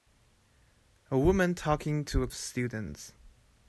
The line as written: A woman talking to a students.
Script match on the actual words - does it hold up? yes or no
yes